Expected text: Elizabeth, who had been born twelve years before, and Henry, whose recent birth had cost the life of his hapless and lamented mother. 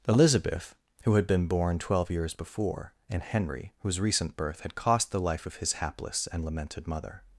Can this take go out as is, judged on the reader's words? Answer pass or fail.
pass